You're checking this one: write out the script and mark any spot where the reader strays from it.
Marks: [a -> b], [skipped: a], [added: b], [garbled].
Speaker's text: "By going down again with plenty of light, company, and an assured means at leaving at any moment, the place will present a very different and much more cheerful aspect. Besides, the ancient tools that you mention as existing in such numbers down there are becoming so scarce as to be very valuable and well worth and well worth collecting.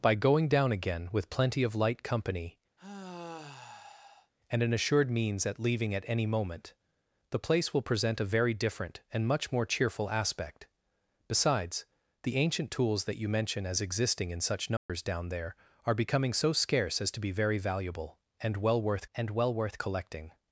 "By going down again with plenty of light, company, and an assured means at leaving at any moment, the place will present a very different and much more cheerful aspect. Besides, the ancient tools that you mention as existing in such numbers down there are becoming so scarce as to be very valuable and well worth and well worth collecting.